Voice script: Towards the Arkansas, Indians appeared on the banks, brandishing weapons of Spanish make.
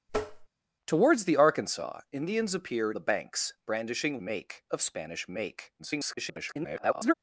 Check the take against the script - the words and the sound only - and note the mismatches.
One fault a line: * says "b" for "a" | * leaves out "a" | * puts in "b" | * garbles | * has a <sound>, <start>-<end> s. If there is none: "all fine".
* has a tap, 0.1-0.5 s
* leaves out "on"
* says "make" for "weapons"
* garbles